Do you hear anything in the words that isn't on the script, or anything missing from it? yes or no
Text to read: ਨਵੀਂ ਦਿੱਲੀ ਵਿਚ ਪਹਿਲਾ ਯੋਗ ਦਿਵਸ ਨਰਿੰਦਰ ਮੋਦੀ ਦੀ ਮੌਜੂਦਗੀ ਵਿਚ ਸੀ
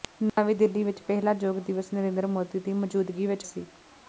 no